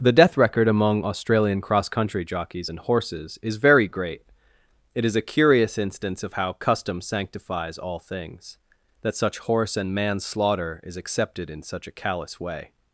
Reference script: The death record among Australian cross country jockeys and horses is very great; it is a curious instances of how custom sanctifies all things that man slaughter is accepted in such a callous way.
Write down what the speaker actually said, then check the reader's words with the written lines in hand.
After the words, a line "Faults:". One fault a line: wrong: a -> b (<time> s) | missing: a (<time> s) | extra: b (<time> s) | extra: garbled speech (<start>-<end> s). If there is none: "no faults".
The death record among Australian cross country jockeys and horses is very great; it is a curious instance of how custom sanctifies all things that such horse and man slaughter is accepted in such a callous way.
Faults:
wrong: instances -> instance (5.8 s)
extra: such horse and (9.2 s)